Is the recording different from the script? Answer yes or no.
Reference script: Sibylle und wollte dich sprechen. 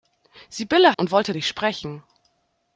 no